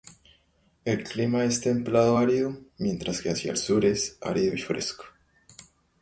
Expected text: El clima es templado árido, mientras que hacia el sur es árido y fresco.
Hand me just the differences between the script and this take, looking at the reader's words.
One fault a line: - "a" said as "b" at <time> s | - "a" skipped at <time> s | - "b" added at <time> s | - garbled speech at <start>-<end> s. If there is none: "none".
none